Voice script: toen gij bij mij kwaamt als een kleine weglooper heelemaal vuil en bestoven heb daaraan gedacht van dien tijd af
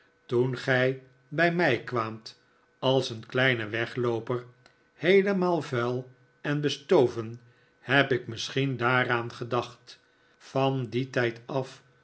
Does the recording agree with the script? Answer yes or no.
no